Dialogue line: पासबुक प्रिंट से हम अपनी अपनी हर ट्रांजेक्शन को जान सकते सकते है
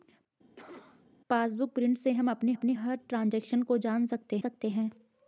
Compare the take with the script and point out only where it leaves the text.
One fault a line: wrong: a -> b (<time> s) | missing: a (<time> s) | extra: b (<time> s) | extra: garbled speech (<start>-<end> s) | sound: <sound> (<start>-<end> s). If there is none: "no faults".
sound: cough (0.6-1.1 s)